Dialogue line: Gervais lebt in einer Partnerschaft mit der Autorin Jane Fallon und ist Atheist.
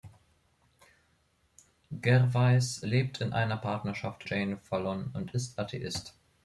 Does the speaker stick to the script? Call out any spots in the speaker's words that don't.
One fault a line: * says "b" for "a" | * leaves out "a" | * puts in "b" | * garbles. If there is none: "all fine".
* leaves out "mit der Autorin"